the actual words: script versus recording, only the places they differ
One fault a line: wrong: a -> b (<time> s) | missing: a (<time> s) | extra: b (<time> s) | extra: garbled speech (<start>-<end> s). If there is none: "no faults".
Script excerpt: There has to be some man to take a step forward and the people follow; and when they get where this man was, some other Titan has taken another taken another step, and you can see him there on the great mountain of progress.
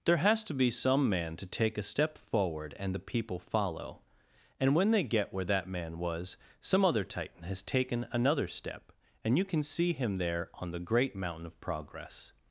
wrong: this -> that (5.5 s)
missing: taken another (8.5 s)